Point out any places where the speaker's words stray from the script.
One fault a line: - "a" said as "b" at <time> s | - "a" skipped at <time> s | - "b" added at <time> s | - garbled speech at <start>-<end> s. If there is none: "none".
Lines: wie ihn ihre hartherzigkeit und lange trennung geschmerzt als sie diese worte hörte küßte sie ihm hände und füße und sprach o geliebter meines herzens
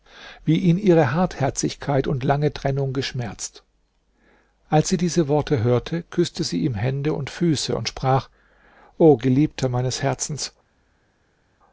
none